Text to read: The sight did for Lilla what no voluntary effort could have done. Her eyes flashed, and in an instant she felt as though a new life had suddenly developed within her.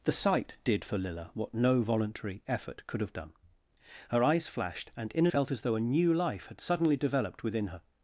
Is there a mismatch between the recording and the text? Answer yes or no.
yes